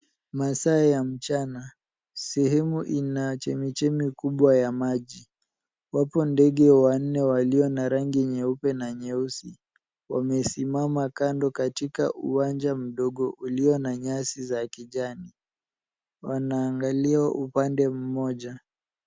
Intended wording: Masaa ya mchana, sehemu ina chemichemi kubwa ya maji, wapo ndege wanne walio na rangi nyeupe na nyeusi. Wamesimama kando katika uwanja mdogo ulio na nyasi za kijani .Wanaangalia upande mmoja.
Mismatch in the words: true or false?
false